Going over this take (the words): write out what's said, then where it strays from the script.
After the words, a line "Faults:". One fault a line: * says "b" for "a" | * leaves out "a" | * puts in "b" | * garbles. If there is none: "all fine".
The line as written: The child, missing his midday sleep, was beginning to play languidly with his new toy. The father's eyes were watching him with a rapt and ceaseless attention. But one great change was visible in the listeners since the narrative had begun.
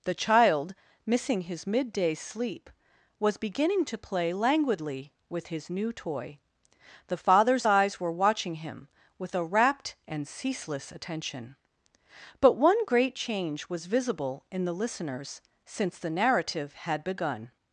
The child, missing his midday sleep, was beginning to play languidly with his new toy. The father's eyes were watching him with a rapt and ceaseless attention. But one great change was visible in the listeners since the narrative had begun.
Faults:
all fine